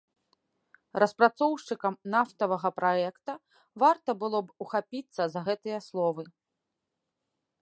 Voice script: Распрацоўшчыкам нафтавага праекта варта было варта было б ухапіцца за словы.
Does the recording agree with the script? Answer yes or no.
no